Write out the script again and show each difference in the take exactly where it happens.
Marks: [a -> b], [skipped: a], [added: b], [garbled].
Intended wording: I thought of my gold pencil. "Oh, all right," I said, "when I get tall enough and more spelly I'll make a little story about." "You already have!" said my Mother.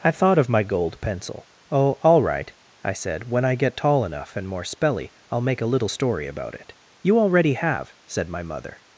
I thought of my gold pencil. "Oh, all right," I said, "when I get tall enough and more spelly I'll make a little story about." [added: it] "You already have!" said my Mother.